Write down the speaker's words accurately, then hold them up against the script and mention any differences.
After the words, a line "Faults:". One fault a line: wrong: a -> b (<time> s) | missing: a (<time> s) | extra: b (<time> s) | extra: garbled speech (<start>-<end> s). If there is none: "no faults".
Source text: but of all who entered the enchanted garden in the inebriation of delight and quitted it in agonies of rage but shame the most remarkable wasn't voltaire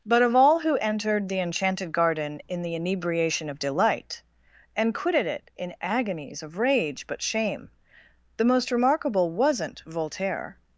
but of all who entered the enchanted garden in the inebriation of delight and quitted it in agonies of rage but shame the most remarkable wasn't voltaire
Faults:
no faults